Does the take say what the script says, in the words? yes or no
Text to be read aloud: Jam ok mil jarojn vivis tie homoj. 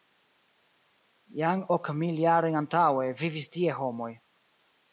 no